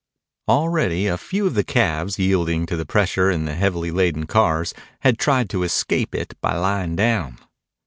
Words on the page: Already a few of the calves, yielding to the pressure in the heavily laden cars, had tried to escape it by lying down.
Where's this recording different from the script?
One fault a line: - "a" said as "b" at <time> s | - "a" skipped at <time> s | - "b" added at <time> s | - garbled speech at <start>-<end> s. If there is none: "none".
none